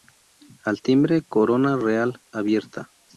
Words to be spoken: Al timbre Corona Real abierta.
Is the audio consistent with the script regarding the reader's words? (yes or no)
yes